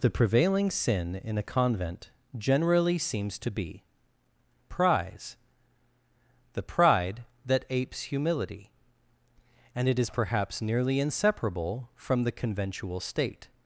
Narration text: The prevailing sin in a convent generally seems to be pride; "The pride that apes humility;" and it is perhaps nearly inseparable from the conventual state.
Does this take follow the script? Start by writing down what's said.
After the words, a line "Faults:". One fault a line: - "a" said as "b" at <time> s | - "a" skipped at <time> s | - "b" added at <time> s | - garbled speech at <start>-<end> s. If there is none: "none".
The prevailing sin in a convent generally seems to be prize; "The pride that apes humility;" and it is perhaps nearly inseparable from the conventual state.
Faults:
- "pride" said as "prize" at 4.7 s